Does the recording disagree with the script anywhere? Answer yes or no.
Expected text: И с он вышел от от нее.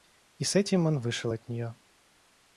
yes